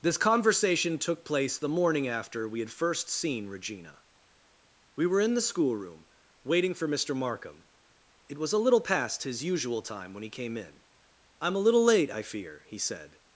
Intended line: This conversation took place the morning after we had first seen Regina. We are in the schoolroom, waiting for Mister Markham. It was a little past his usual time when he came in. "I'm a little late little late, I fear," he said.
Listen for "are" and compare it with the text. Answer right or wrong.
wrong